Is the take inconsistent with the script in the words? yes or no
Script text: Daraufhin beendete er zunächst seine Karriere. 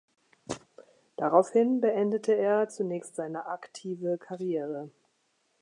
yes